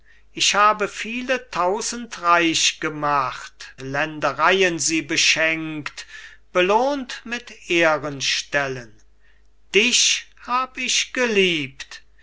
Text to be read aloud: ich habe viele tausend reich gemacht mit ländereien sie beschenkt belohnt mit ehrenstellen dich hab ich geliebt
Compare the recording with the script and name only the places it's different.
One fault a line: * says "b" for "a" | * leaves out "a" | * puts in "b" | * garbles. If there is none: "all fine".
* leaves out "mit"